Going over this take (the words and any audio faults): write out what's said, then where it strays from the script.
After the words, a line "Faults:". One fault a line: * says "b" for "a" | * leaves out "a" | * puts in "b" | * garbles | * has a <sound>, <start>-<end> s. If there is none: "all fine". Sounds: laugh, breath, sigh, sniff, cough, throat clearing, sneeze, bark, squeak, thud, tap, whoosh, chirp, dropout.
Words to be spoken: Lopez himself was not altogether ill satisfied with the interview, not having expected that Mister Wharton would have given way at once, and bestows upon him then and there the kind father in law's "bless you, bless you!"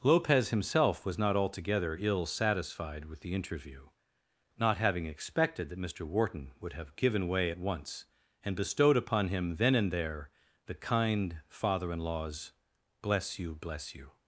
Lopez himself was not altogether ill satisfied with the interview, not having expected that Mister Wharton would have given way at once, and bestowed upon him then and there the kind father in law's "bless you, bless you!"
Faults:
* says "bestowed" for "bestows"